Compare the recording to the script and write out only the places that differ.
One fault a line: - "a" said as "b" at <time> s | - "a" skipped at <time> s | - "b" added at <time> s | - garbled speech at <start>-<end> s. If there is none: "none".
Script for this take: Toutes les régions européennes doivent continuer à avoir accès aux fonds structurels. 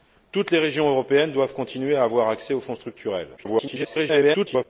- garbled speech at 3.4-4.7 s